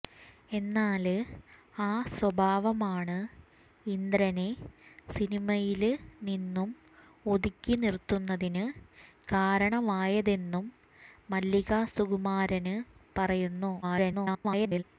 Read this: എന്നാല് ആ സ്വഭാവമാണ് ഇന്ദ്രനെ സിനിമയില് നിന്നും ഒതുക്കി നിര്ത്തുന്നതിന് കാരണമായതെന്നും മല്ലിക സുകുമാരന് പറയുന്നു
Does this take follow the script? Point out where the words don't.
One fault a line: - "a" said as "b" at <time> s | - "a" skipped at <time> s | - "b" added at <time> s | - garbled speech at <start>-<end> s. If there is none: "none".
- garbled speech at 13.8-14.8 s